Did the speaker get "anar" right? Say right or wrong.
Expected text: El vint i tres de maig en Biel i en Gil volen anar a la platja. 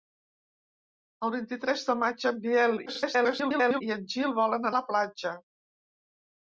wrong